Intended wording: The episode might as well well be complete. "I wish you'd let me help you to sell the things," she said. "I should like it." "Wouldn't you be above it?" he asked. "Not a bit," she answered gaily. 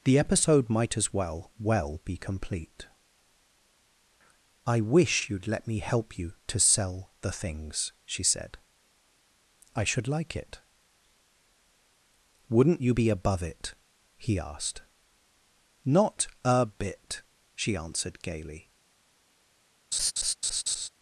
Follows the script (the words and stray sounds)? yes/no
no